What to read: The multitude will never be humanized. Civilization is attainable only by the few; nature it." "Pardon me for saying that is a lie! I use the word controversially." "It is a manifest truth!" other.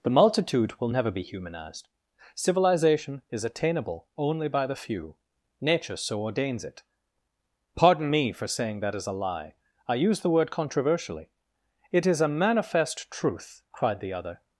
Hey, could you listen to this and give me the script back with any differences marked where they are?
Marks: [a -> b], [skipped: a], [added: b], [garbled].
The multitude will never be humanized. Civilization is attainable only by the few; nature [added: so ordains] it." "Pardon me for saying that is a lie! I use the word controversially." "It is a manifest truth!" [added: cried the] other.